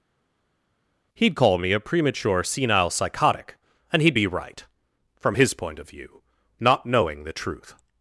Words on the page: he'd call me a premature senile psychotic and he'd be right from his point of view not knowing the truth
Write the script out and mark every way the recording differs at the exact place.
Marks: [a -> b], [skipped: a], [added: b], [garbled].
he'd call me a premature senile psychotic and he'd be right from his point of view not knowing the truth